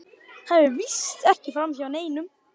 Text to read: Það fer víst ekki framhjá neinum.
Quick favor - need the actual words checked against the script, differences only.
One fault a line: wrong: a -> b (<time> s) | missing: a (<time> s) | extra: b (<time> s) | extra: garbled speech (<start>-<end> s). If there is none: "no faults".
no faults